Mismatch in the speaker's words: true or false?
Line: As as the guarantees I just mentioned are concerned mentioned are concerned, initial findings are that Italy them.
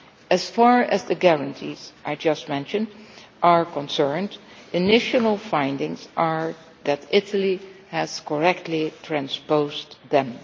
true